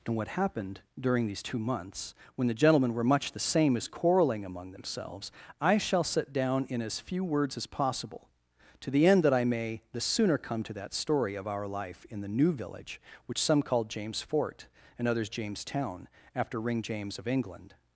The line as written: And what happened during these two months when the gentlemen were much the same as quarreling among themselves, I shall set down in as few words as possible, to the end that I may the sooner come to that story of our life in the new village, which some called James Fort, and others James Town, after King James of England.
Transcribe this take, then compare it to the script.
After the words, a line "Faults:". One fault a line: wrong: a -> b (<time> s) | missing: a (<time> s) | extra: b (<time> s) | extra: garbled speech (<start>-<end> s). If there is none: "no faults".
And what happened during these two months when the gentlemen were much the same as quarreling among themselves, I shall set down in as few words as possible, to the end that I may the sooner come to that story of our life in the new village, which some called James Fort, and others James Town, after Ring James of England.
Faults:
wrong: King -> Ring (16.6 s)